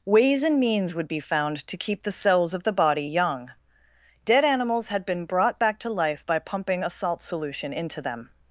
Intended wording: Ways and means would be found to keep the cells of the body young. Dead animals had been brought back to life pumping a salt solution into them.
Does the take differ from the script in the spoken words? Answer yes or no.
yes